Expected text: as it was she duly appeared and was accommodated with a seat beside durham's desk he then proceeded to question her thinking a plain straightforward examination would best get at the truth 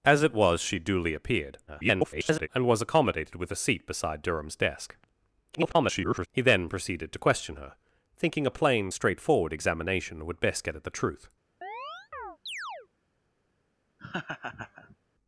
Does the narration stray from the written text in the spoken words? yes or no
yes